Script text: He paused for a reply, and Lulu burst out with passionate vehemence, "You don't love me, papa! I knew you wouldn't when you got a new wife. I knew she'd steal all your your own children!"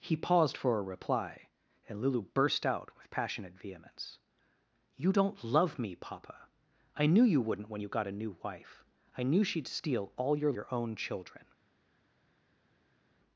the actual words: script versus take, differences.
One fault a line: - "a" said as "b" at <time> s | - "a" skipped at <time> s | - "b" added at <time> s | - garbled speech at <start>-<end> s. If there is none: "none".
none